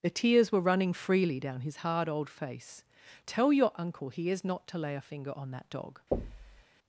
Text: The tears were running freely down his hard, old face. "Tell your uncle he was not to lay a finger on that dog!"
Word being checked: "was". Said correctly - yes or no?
no